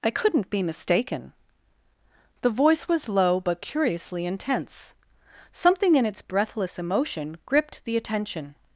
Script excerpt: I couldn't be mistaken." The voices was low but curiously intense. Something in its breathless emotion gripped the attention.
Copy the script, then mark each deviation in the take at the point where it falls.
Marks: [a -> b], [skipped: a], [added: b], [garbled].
I couldn't be mistaken." The [voices -> voice] was low but curiously intense. Something in its breathless emotion gripped the attention.